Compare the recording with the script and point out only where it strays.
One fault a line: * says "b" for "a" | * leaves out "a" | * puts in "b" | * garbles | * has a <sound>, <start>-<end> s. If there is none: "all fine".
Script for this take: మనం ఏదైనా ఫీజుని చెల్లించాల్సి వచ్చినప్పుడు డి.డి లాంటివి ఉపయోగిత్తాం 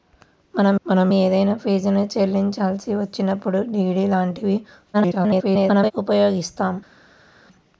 * puts in "మనం"
* garbles